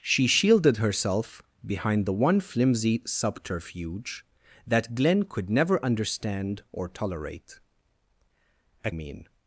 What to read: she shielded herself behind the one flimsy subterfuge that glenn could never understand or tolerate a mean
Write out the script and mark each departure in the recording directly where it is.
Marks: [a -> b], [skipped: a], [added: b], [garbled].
she shielded herself behind the one flimsy subterfuge that glenn could never understand or tolerate a mean